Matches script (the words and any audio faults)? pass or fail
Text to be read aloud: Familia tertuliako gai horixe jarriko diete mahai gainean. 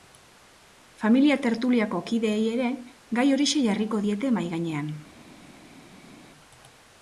fail